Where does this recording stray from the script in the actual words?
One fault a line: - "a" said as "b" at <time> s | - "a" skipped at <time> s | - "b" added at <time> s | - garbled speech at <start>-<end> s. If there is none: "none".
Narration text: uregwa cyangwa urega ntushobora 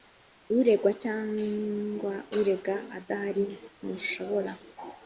- "adahari" added at 3.0 s